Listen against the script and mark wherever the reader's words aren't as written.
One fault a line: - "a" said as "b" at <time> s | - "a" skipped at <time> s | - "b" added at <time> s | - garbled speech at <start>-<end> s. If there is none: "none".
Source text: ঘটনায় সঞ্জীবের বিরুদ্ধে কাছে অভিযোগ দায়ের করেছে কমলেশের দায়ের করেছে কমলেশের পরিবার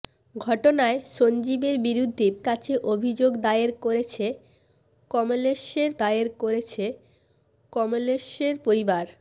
none